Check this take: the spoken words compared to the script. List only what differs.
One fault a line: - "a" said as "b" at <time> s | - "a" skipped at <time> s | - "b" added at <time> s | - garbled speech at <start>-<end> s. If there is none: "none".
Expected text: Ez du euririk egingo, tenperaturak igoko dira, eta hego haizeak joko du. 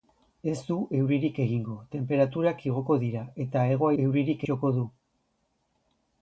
- "haizeak" said as "euririk" at 4.0 s